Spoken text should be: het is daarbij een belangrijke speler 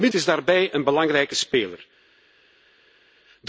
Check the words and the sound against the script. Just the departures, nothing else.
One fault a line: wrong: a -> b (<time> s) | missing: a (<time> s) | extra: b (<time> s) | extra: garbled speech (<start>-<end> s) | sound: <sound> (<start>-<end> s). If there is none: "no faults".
no faults